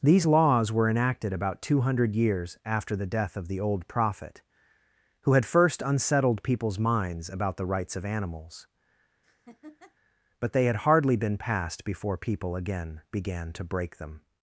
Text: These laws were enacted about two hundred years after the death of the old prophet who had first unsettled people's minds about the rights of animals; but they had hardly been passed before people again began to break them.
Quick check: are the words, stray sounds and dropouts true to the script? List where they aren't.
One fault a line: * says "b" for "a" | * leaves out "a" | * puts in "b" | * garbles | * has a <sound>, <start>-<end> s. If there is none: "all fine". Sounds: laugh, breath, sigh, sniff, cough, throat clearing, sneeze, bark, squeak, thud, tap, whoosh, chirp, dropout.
* has a laugh, 9.2-10.0 s